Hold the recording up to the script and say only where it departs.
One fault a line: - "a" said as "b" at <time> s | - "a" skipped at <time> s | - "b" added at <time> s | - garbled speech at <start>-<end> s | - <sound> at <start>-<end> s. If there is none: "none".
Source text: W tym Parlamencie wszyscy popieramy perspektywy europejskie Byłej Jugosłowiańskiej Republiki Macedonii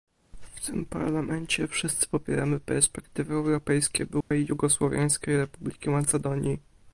- dropout at 4.2-4.3 s